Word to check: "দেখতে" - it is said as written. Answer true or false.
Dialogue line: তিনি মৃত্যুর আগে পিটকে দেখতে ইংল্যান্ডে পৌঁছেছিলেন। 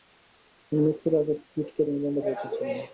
false